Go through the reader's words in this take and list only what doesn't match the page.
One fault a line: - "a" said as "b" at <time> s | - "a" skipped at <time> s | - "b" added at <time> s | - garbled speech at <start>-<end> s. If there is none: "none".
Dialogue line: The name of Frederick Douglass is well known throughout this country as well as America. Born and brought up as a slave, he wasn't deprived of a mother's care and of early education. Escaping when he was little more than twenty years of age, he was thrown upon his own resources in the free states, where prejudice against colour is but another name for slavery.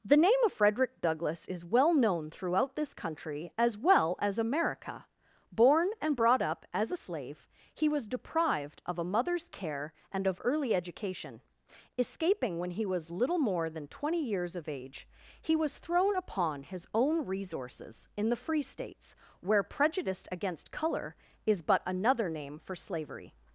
- "wasn't" said as "was" at 7.9 s